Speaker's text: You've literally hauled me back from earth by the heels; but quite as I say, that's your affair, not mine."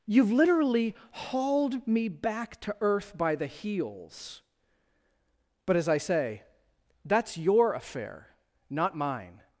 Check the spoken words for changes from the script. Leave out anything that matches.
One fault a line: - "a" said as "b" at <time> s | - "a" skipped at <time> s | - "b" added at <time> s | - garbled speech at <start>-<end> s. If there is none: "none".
- "from" said as "to" at 2.6 s
- "quite" skipped at 5.8 s